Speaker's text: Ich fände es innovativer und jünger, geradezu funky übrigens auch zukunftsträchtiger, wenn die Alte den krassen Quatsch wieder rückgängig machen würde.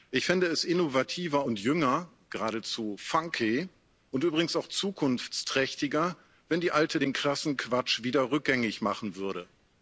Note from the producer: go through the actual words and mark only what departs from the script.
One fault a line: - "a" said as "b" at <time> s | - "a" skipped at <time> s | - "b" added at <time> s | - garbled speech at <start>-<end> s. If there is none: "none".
- "und" added at 4.1 s